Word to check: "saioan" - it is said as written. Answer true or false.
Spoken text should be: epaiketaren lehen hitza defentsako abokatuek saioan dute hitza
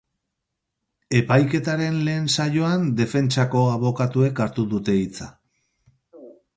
false